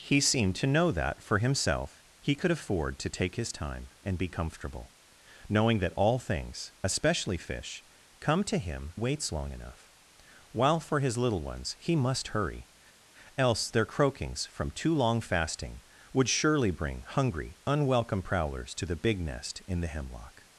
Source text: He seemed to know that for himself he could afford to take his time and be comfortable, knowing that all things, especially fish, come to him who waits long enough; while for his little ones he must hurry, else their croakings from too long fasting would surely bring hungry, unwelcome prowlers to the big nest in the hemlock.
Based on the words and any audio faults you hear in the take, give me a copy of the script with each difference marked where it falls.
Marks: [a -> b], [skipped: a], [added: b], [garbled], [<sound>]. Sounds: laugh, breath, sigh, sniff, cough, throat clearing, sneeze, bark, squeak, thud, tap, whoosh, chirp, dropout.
He seemed to know that for himself he could afford to take his time and be comfortable, knowing that all things, especially fish, come to him [skipped: who] waits long enough; while for his little ones he must hurry, else their croakings from too long fasting would surely bring hungry, unwelcome prowlers to the big nest in the hemlock.